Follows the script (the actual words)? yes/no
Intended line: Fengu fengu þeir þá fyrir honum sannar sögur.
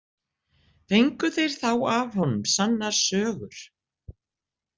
no